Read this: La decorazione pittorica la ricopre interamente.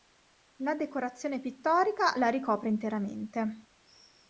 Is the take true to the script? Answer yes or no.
yes